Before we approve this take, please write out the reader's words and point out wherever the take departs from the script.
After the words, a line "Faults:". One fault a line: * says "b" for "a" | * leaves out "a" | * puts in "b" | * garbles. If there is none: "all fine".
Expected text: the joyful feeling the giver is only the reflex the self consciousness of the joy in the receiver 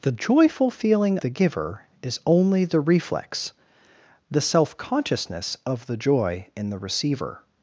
the joyful feeling the giver is only the reflex the self consciousness of the joy in the receiver
Faults:
all fine